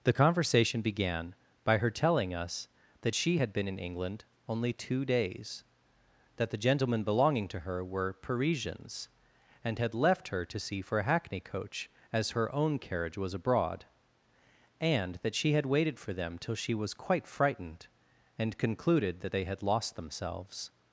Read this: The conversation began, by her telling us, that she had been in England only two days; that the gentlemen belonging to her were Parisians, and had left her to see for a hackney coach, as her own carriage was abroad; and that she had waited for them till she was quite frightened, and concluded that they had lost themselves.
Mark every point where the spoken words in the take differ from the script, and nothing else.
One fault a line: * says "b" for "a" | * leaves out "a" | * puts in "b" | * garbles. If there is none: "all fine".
all fine